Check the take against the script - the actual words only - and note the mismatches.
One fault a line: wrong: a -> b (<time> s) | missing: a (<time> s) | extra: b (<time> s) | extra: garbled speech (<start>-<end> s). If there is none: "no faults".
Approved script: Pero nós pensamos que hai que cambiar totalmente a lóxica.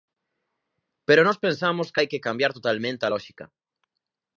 no faults